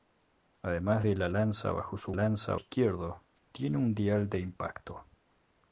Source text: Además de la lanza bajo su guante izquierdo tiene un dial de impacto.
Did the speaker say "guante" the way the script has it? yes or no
no